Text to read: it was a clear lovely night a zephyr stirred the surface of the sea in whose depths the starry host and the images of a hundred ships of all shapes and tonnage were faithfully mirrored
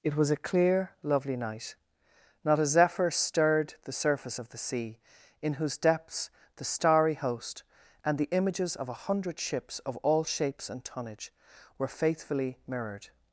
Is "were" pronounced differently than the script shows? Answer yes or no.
no